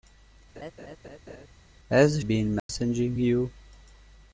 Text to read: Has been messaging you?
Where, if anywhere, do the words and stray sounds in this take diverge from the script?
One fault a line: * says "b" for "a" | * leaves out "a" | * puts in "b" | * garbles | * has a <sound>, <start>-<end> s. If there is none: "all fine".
* has a laugh, 0.6-1.5 s
* has a dropout, 2.6-2.7 s